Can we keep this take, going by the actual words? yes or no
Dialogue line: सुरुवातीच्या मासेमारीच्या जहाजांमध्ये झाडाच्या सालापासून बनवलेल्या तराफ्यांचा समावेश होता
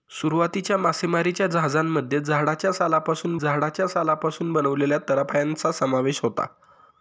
no